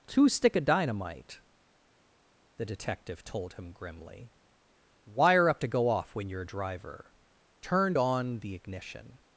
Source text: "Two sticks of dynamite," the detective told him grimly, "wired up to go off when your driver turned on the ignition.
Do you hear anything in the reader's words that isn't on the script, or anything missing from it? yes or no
yes